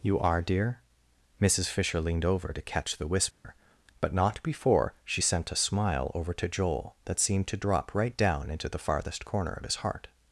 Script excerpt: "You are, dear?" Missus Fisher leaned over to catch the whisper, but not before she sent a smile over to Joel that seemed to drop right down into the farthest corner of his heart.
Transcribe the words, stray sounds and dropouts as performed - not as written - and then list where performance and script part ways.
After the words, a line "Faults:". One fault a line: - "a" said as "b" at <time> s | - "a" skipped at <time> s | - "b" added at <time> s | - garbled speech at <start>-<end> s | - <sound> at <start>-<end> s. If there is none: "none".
"You are, dear?" Missus Fisher leaned over to catch the whisper, but not before she sent a smile over to Joel that seemed to drop right down into the farthest corner of his heart.
Faults:
- dropout at 3.3-3.4 s